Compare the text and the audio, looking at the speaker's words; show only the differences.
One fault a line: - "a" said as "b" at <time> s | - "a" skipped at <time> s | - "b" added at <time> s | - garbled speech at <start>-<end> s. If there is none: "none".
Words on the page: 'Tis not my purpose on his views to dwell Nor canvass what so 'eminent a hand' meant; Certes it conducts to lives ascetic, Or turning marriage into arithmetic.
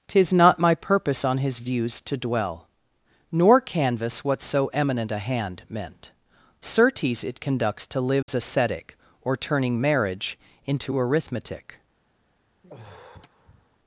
none